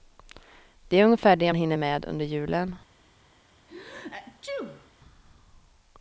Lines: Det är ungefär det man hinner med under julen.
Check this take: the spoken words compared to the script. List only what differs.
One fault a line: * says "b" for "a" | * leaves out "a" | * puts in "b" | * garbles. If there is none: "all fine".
* leaves out "man"